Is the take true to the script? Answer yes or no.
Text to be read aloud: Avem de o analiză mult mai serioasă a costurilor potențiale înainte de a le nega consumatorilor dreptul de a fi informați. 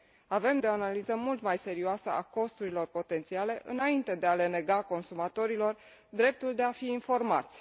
yes